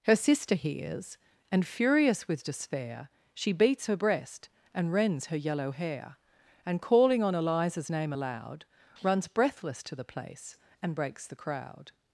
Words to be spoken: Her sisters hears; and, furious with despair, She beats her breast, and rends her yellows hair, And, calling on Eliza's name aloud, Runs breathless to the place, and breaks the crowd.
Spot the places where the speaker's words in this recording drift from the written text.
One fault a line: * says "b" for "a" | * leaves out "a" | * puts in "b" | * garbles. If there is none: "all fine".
* says "sister" for "sisters"
* says "yellow" for "yellows"